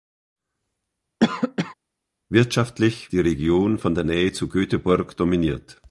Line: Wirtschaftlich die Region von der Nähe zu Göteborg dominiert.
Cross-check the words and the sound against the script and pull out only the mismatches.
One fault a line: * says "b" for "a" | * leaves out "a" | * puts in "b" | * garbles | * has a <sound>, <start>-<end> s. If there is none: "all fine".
* has a cough, 1.2-1.7 s